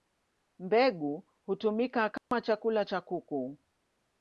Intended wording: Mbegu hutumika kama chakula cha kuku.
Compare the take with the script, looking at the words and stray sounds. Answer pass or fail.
fail